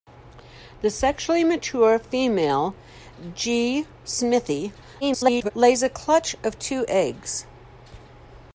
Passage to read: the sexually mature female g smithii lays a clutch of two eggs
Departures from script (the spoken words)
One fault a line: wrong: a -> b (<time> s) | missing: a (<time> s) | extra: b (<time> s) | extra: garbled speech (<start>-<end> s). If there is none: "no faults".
extra: garbled speech (5.0-5.5 s)